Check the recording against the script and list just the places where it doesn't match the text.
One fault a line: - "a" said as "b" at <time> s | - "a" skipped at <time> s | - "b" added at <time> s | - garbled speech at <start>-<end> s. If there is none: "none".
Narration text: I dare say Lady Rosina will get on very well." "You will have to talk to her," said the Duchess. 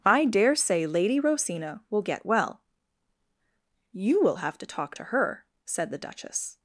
- "on very" skipped at 2.2 s